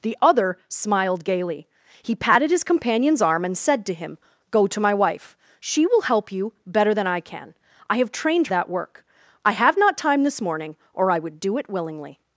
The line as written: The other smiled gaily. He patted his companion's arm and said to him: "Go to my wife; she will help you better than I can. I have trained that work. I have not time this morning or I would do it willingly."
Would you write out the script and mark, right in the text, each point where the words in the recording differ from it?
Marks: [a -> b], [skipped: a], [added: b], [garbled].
The other smiled gaily. He patted his companion's arm and said to him: "Go to my wife; she will help you better than I can. I have trained that work. I have not time this morning or I would do it willingly."